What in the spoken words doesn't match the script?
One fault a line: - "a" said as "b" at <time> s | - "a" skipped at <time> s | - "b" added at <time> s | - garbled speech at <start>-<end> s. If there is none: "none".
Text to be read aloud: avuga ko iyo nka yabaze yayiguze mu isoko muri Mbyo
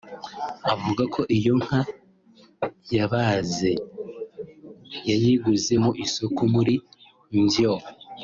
none